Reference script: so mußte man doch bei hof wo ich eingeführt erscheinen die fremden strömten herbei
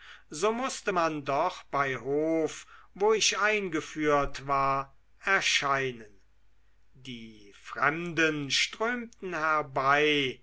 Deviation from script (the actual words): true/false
true